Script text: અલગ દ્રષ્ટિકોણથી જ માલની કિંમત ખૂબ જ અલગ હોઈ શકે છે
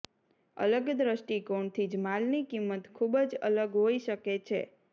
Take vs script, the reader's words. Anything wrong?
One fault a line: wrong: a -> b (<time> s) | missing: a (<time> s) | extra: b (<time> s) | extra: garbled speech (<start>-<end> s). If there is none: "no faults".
no faults